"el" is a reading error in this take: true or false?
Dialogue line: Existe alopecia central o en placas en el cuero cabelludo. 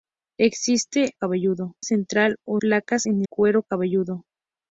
true